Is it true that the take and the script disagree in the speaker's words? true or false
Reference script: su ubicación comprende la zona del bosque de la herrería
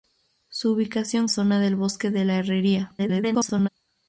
true